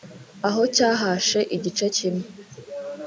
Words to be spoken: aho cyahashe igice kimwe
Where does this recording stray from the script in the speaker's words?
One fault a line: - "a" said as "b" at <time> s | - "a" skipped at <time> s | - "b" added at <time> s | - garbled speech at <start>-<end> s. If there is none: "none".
none